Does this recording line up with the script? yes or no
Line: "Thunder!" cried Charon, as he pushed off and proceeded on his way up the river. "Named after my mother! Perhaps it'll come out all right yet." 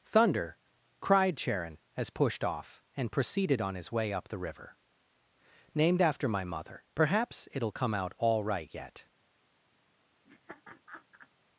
no